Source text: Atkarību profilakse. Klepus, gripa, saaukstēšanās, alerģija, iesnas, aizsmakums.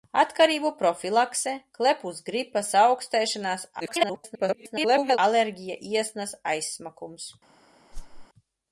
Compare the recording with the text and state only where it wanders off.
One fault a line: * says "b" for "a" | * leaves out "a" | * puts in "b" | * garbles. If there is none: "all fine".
* garbles